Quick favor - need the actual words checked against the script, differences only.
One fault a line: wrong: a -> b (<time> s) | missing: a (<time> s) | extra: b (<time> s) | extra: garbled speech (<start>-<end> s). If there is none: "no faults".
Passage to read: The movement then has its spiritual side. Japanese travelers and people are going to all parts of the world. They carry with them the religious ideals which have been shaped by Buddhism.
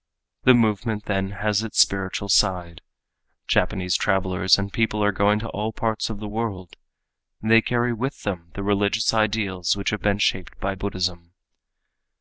no faults